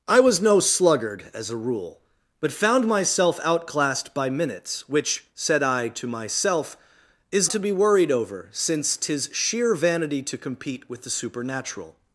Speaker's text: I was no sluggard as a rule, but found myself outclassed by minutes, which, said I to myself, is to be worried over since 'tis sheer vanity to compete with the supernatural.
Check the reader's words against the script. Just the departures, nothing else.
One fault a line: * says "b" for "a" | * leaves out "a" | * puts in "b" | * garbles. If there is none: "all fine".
all fine